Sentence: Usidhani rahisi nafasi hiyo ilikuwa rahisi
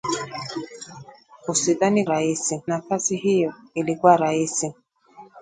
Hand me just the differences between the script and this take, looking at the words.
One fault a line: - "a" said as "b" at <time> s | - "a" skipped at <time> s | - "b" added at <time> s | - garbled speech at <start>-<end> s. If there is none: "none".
none